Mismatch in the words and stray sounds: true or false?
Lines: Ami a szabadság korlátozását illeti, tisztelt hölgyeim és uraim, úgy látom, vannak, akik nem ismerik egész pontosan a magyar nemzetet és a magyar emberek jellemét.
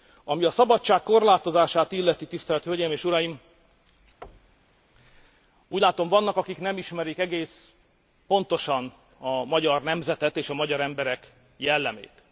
true